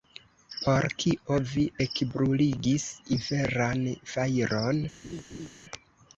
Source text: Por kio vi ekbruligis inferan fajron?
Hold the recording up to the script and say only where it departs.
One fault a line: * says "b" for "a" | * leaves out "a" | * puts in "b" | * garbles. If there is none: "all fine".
all fine